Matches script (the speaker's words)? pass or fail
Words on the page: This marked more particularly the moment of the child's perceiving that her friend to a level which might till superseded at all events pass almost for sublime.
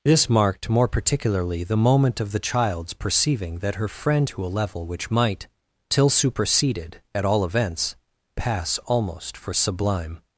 pass